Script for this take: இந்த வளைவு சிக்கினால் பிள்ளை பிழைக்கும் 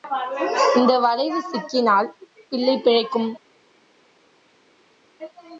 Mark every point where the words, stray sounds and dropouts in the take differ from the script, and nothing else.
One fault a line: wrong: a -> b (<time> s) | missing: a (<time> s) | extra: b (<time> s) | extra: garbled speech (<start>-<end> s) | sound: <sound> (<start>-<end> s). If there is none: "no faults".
no faults